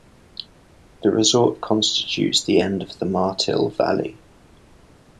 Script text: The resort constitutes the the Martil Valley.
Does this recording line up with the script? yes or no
no